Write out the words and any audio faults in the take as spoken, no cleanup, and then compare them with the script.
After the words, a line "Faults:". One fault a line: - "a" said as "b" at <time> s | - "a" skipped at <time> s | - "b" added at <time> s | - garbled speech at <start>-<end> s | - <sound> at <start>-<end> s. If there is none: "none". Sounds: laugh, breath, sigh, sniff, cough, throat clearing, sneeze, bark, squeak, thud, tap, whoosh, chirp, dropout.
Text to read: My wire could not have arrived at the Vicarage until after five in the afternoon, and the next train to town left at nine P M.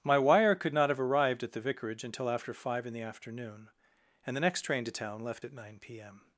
My wire could not have arrived at the Vicarage until after five in the afternoon, and the next train to town left at nine P M.
Faults:
none